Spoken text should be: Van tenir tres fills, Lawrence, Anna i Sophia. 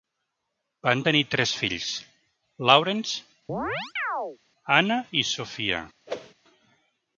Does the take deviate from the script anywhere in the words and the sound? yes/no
yes